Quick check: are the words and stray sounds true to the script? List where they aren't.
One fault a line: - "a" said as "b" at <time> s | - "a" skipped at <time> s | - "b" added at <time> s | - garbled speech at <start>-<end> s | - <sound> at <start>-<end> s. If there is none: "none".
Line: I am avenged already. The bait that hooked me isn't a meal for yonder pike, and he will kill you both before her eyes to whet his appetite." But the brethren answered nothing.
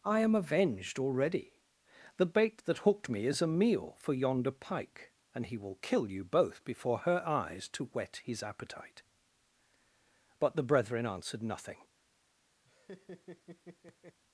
- "isn't" said as "is" at 3.3 s
- laugh at 12.6-14.2 s